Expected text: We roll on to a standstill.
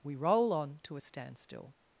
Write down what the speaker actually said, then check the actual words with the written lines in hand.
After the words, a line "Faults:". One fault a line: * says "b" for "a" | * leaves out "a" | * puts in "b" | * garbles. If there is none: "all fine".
We roll on to a standstill.
Faults:
all fine